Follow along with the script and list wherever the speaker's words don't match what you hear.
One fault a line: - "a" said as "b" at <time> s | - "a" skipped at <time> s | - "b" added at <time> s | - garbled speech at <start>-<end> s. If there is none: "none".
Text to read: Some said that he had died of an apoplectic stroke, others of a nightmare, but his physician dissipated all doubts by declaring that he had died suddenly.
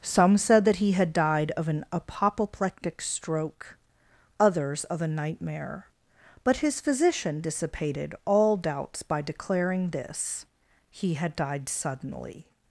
- "that" said as "this" at 9.9 s